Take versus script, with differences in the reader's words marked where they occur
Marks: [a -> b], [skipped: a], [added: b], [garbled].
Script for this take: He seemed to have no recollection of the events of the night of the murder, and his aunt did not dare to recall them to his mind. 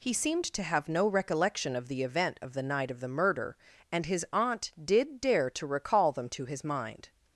He seemed to have no recollection of the [events -> event] of the night of the murder, and his aunt did [skipped: not] dare to recall them to his mind.